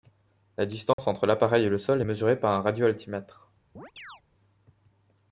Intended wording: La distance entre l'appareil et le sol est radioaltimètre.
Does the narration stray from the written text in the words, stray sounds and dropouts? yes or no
yes